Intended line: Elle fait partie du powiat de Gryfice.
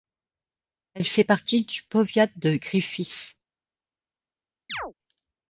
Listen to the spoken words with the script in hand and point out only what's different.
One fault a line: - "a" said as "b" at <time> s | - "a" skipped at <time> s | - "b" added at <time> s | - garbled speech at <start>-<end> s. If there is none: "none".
none